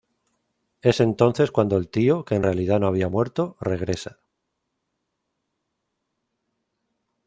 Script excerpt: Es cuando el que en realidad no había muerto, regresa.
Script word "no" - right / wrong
right